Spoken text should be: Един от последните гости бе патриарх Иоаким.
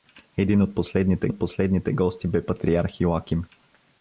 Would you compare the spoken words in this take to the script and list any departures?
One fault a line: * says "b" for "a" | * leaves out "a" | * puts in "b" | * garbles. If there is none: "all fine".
* puts in "от последните"